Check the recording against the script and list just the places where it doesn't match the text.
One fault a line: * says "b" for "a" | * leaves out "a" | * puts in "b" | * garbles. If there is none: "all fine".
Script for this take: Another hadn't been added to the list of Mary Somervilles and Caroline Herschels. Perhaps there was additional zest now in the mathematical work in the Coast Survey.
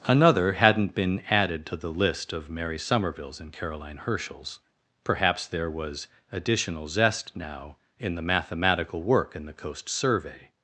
all fine